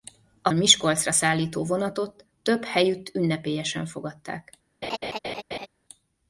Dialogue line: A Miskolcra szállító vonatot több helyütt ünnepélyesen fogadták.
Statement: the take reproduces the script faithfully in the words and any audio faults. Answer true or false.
false